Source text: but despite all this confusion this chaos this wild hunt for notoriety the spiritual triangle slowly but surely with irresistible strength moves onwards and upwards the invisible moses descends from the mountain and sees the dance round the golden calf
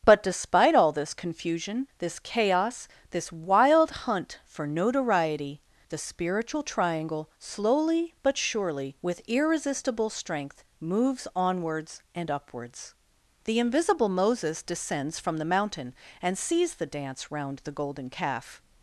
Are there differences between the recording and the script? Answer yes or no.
no